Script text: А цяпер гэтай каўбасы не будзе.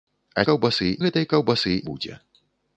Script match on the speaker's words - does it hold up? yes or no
no